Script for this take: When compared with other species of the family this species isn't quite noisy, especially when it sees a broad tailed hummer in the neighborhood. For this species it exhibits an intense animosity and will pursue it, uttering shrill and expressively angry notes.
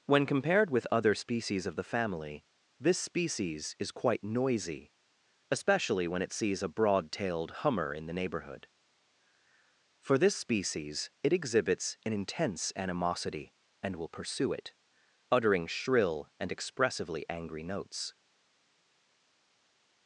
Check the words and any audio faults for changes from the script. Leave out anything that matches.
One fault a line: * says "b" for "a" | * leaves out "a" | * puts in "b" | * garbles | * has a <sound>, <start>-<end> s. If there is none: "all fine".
* says "is" for "isn't"